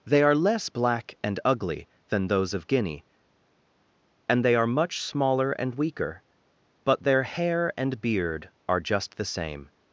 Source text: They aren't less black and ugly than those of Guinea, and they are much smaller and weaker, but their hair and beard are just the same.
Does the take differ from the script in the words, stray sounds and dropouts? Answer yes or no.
yes